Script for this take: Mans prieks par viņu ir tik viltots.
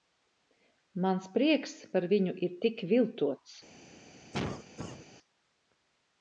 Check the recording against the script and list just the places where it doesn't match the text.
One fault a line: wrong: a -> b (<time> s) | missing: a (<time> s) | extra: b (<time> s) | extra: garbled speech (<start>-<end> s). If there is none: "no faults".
no faults